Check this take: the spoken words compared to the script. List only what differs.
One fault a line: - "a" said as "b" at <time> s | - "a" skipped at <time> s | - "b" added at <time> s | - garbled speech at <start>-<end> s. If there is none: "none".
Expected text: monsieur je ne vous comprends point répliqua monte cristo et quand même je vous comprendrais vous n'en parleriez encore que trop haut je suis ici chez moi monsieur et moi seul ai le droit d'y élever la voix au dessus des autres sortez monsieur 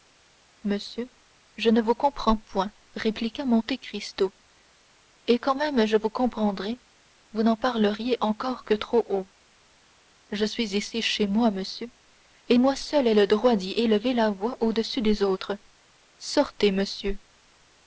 none